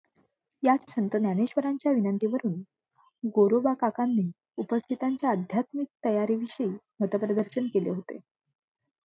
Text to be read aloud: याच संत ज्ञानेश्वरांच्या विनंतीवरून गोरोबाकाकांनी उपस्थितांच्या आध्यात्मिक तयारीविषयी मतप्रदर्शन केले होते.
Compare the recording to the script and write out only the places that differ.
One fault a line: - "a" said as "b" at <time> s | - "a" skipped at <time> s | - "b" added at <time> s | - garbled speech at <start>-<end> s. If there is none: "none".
none